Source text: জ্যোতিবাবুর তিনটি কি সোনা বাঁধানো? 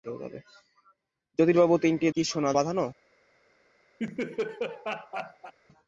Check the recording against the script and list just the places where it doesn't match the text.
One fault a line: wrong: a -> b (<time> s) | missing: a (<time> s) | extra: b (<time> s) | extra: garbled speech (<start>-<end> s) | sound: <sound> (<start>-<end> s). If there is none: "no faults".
sound: laugh (4.0-5.5 s)